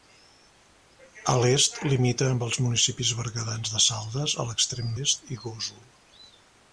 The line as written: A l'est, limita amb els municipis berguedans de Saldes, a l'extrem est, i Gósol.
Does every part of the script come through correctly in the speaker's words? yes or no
yes